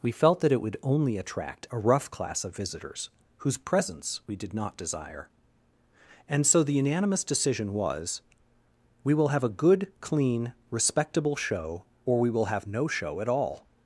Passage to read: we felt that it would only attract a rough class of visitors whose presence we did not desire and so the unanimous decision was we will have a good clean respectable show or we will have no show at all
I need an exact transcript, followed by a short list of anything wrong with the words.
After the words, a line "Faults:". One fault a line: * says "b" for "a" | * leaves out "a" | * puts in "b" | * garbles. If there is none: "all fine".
we felt that it would only attract a rough class of visitors whose presence we did not desire and so the unanimous decision was we will have a good clean respectable show or we will have no show at all
Faults:
all fine